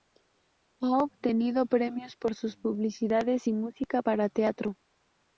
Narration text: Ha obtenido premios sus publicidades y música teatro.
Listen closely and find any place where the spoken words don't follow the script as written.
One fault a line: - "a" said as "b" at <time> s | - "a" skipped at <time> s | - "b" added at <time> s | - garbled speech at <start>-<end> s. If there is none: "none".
- "por" added at 2.1 s
- "para" added at 4.0 s